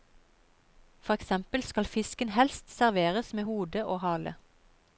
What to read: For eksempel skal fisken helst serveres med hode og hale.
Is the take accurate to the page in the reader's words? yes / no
yes